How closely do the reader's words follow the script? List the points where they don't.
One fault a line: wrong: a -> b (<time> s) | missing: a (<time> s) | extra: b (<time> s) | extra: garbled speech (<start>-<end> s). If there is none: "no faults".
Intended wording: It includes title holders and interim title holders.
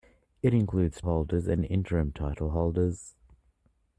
missing: title (1.0 s)